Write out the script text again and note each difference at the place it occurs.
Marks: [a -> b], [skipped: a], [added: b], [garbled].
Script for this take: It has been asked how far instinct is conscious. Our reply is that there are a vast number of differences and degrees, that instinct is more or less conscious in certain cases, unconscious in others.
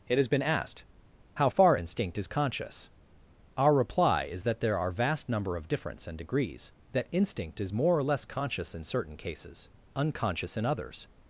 It has been asked how far instinct is conscious. Our reply is that there are [skipped: a] vast number of [differences -> difference] and degrees, that instinct is more or less conscious in certain cases, unconscious in others.